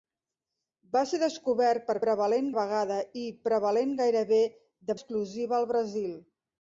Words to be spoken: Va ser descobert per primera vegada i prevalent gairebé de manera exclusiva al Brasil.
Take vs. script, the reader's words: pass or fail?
fail